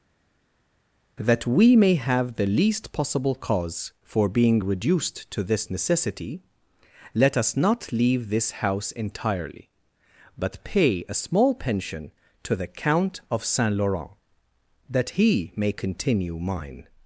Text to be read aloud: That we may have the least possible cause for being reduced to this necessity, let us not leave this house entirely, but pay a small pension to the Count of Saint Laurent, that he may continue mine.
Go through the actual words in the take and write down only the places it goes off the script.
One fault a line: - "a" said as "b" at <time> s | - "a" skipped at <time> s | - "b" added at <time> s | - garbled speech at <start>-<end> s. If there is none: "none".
none